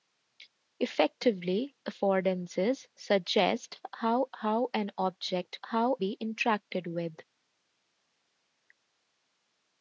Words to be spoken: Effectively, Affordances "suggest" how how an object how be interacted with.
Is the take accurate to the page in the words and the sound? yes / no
yes